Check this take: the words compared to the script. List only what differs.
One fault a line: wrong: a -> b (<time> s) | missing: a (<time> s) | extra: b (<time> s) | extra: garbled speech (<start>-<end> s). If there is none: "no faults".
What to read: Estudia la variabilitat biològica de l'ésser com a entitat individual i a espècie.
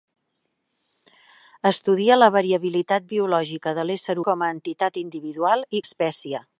no faults